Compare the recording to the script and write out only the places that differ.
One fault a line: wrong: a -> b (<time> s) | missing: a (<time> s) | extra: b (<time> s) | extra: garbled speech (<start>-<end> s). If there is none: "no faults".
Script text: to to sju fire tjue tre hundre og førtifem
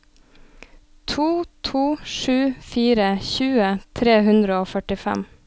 no faults